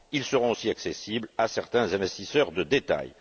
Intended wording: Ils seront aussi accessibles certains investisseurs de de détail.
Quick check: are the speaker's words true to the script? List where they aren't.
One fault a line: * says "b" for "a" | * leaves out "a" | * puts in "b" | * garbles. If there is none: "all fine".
* puts in "à"
* leaves out "de"